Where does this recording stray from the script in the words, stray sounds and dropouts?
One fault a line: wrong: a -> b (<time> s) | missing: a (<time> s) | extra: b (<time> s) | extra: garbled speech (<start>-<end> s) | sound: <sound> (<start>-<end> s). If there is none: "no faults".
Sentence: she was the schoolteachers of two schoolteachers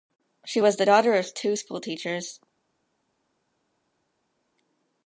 wrong: schoolteachers -> daughter (0.8 s)